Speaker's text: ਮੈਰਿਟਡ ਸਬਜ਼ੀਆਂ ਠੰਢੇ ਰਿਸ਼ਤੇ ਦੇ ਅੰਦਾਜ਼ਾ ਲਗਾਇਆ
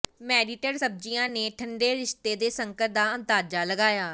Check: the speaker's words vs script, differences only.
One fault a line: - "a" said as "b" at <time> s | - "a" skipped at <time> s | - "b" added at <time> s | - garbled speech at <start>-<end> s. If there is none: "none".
- "ਨੇ" added at 1.3 s
- "ਸੰਕਟ ਦਾ" added at 2.5 s